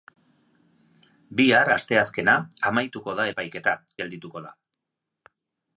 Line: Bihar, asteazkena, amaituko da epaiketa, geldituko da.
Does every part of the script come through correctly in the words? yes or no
yes